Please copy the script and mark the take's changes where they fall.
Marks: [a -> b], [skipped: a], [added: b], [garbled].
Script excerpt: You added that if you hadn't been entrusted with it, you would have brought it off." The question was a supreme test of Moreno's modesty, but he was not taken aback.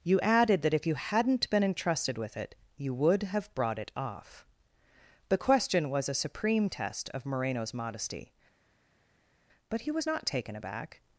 You added that if you hadn't been entrusted with it, you would have brought it off." The question was a supreme test of Moreno's modesty, but he was not taken aback.